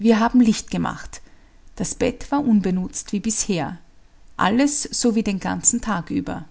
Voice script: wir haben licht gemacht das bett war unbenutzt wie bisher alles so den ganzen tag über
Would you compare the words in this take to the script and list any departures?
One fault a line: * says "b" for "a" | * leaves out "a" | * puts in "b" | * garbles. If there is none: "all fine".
* puts in "wie"